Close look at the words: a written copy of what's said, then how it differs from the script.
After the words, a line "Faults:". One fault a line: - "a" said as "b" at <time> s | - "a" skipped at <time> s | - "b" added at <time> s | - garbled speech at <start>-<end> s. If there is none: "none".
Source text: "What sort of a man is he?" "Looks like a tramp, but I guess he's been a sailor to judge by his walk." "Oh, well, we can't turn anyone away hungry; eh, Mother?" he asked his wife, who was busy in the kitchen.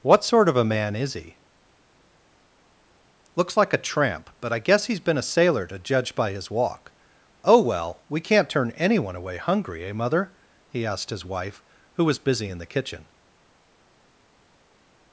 "What sort of a man is he?" "Looks like a tramp, but I guess he's been a sailor to judge by his walk." "Oh, well, we can't turn anyone away hungry; eh, Mother?" he asked his wife, who was busy in the kitchen.
Faults:
none